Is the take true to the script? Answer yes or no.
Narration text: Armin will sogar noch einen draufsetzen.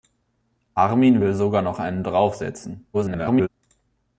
no